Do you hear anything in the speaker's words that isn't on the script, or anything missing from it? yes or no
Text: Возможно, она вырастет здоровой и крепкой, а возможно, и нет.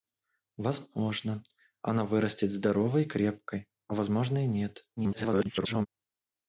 yes